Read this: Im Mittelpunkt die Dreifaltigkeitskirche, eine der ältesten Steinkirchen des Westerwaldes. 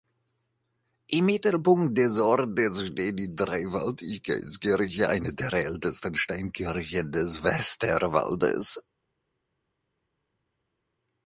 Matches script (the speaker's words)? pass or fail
fail